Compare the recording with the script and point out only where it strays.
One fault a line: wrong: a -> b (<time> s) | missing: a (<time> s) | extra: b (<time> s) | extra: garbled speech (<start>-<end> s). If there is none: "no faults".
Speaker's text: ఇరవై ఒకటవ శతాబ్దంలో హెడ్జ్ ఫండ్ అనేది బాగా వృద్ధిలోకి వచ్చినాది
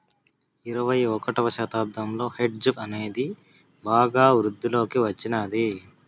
missing: ఫండ్ (2.7 s)